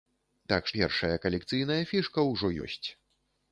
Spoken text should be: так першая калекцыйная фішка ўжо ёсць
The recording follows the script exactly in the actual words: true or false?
true